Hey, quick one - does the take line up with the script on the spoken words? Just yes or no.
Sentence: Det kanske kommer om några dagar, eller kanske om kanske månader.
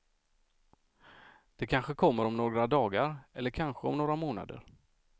no